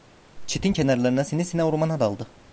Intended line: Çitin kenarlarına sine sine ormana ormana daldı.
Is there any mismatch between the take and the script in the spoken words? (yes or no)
yes